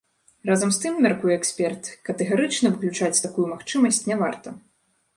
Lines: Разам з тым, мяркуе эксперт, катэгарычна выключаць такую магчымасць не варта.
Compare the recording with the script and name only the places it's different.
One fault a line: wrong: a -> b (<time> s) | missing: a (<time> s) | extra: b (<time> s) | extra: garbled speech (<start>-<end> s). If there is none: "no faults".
no faults